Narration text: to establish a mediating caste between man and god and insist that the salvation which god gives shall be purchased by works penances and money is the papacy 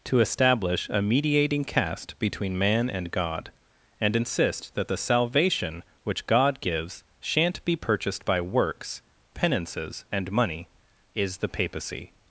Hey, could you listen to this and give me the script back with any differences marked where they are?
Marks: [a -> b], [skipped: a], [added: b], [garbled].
to establish a mediating caste between man and god and insist that the salvation which god gives [shall -> shan't] be purchased by works penances and money is the papacy